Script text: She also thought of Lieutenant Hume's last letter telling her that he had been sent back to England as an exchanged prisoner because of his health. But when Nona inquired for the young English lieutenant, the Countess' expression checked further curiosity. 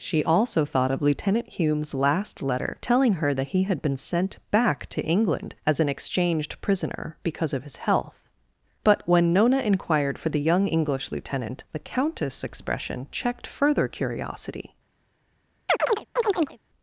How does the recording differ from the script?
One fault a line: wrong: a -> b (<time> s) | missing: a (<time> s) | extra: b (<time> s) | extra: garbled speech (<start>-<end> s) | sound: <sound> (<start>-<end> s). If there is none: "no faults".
sound: chirp (15.7-16.6 s)